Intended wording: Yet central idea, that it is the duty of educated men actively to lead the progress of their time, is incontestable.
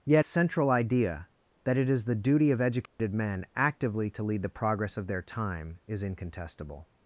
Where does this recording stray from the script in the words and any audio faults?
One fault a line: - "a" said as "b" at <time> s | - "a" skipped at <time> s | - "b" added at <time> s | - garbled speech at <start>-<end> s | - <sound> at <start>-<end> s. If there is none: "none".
- dropout at 2.9-3.0 s